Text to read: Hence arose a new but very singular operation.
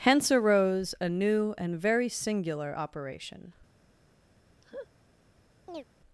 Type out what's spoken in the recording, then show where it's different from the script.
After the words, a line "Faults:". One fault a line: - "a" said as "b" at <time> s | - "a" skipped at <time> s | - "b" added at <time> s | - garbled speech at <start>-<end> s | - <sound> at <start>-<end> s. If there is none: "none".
Hence arose a new and very singular operation.
Faults:
- "but" said as "and" at 1.6 s
- laugh at 4.6-4.9 s
- chirp at 5.7-5.8 s